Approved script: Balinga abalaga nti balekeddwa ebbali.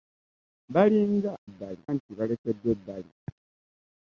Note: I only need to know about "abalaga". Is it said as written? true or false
false